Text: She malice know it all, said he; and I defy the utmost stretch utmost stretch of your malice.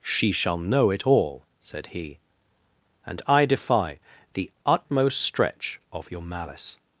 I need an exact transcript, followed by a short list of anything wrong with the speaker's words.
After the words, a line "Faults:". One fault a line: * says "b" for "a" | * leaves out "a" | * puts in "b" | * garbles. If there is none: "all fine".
She shall know it all, said he; and I defy the utmost stretch of your malice.
Faults:
* says "shall" for "malice"
* leaves out "utmost stretch"